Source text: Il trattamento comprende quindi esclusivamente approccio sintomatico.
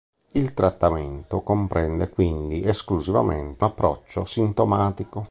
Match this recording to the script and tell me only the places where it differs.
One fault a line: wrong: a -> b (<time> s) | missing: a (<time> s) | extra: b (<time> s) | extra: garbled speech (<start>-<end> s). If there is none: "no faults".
no faults